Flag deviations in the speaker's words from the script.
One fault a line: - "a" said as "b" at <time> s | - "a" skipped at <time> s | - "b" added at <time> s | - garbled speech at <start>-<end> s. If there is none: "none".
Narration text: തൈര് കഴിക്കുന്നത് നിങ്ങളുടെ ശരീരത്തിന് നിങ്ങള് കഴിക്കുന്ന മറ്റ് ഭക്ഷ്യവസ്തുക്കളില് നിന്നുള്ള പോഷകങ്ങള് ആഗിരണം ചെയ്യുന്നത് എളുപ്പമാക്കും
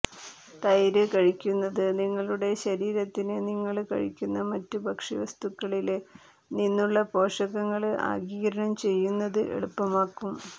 none